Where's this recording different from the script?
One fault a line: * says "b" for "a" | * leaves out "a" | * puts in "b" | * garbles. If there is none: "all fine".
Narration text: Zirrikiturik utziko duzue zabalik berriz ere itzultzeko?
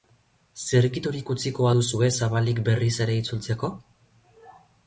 all fine